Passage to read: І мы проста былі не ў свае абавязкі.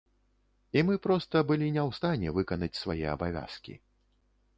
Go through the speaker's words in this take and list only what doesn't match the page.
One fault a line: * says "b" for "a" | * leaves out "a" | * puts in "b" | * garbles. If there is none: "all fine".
* puts in "стане выканаць"